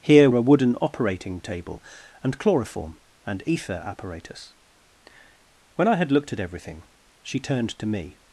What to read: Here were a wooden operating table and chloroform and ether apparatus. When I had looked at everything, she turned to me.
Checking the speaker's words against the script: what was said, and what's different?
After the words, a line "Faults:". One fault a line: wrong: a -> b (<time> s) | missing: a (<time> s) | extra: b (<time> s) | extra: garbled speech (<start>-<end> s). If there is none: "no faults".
Here a wooden operating table and chloroform and ether apparatus. When I had looked at everything, she turned to me.
Faults:
missing: were (0.3 s)